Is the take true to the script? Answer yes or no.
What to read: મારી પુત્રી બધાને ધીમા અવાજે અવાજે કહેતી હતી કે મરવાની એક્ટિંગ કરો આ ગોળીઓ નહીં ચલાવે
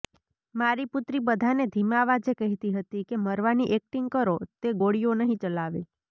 no